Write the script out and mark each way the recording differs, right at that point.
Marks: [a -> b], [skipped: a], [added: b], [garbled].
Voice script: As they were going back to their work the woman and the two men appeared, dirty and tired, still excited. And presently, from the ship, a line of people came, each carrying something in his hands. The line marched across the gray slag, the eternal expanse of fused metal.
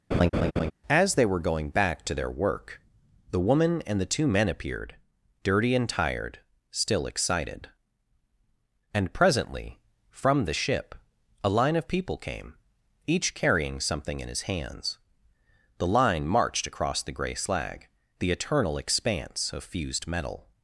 As they were going back to their work the woman and the two men appeared, dirty and tired, still excited. And presently, from the ship, a line of people came, each carrying something in his hands. The line marched across the gray slag, the eternal expanse of fused metal.